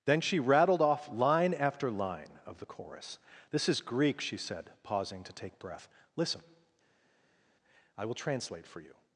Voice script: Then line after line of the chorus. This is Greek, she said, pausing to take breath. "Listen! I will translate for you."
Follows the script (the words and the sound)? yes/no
no